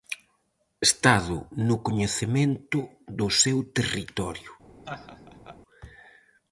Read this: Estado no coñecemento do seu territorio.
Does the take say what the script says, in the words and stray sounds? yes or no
no